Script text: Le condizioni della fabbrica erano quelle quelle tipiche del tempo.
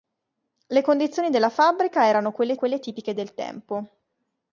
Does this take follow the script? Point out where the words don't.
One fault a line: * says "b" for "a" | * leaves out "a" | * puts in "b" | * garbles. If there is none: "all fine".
all fine